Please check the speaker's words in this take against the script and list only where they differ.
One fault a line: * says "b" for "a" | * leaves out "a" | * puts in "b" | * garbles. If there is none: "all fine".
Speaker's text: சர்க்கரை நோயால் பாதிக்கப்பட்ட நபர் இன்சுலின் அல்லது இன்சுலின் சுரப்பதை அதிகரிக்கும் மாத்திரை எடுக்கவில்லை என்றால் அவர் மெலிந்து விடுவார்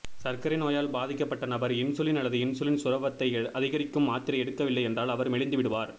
all fine